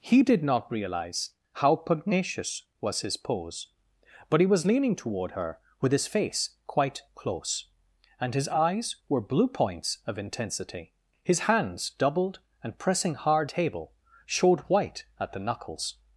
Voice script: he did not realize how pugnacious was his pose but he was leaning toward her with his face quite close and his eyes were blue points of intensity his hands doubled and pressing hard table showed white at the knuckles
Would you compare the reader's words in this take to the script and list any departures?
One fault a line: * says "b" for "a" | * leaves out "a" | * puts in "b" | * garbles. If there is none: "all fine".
all fine